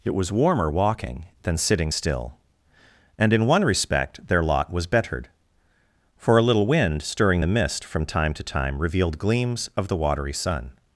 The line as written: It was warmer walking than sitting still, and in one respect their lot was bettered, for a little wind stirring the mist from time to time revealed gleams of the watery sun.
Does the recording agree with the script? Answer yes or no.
yes